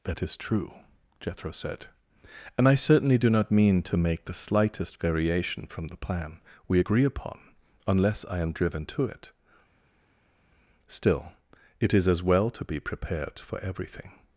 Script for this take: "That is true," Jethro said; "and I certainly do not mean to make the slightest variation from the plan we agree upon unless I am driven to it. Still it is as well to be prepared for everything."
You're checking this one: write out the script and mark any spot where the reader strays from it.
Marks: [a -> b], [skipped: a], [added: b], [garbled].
"That is true," Jethro said; "and I certainly do not mean to make the slightest variation from the plan we agree upon unless I am driven to it. Still it is as well to be prepared for everything."